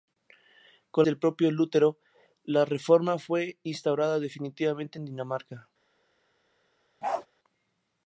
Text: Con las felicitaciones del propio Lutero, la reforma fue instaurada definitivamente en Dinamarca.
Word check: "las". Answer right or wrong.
wrong